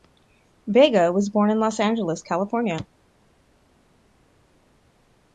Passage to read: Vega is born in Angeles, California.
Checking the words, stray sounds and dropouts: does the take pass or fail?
fail